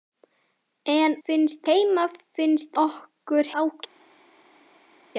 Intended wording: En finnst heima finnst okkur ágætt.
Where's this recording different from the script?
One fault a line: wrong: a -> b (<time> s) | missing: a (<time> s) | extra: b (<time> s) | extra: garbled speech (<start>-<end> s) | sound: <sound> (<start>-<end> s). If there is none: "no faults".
no faults